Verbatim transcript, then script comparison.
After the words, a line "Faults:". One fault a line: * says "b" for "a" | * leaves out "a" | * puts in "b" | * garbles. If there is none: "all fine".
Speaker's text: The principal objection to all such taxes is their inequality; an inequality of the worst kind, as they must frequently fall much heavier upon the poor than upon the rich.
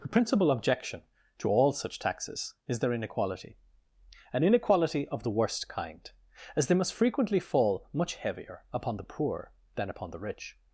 The principal objection to all such taxes is their inequality; an inequality of the worst kind, as they must frequently fall much heavier upon the poor than upon the rich.
Faults:
all fine